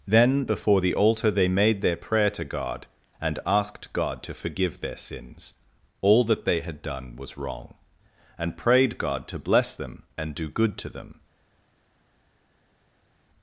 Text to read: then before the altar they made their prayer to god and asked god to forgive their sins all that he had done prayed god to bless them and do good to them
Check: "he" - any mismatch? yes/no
yes